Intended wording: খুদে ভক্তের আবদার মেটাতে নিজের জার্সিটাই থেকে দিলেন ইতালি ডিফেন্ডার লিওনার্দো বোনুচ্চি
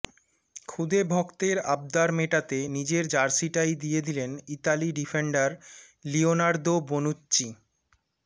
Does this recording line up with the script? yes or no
no